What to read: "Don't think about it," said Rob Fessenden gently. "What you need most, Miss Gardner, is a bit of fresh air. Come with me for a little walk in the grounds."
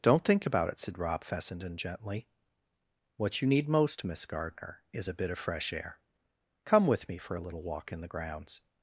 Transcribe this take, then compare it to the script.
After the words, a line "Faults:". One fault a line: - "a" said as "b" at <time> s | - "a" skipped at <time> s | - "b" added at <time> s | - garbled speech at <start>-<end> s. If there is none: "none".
"Don't think about it," said Rob Fessenden gently. "What you need most, Miss Gardner, is a bit of fresh air. Come with me for a little walk in the grounds."
Faults:
none